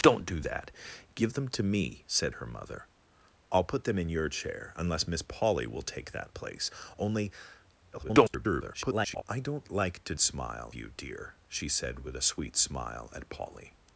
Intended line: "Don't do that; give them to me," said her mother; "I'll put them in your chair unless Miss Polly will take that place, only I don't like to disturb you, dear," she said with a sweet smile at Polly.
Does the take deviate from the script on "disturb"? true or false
true